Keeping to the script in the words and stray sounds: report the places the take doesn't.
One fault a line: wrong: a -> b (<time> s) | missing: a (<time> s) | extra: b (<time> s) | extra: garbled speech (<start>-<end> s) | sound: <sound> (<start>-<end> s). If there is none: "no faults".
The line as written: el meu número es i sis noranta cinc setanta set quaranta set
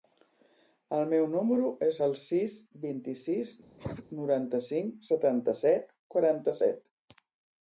extra: el sis vint (2.0 s)
sound: cough (3.8-4.1 s)